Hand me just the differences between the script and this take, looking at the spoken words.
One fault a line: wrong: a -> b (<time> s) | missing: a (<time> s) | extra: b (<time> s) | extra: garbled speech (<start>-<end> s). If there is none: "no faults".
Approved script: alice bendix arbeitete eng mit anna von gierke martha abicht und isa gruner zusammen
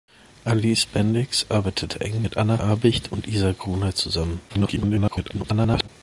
missing: von gierke martha (2.6 s)
extra: garbled speech (4.5-5.9 s)